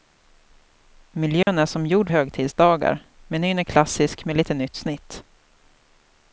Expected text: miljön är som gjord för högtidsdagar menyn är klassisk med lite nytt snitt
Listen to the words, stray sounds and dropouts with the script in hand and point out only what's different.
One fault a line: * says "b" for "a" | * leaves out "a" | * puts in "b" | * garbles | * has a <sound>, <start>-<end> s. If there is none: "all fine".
* has a dropout, 1.4-1.5 s
* leaves out "för"